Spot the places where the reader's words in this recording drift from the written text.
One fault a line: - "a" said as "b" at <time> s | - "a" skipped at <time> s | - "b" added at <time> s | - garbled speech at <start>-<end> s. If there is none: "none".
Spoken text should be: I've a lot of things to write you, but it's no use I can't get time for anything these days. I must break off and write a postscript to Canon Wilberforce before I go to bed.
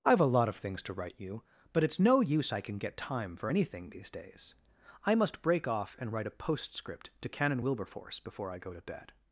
- "can't" said as "can" at 2.6 s